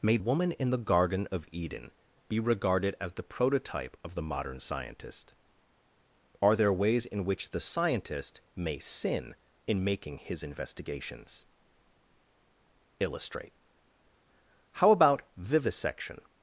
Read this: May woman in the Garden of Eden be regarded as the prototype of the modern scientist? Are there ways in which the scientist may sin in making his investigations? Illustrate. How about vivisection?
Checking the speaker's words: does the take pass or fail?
pass